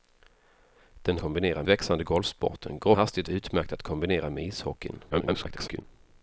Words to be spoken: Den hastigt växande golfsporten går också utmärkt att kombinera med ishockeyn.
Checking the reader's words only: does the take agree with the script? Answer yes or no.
no